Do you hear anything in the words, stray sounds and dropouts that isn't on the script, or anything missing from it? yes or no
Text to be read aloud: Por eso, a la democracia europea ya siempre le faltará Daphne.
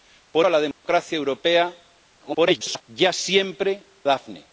yes